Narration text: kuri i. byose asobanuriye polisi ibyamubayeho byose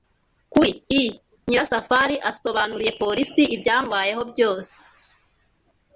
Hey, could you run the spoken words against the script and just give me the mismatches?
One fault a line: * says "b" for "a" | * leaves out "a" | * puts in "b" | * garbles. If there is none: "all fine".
* says "nyirasafari" for "byose"